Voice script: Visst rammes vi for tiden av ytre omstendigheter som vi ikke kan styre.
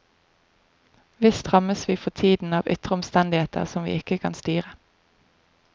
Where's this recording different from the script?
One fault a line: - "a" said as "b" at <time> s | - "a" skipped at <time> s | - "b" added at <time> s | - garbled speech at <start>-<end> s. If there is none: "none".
none